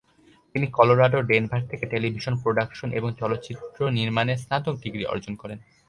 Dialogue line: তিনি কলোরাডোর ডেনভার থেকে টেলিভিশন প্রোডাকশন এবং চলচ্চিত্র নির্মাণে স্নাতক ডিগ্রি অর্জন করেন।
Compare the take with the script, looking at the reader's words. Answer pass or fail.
pass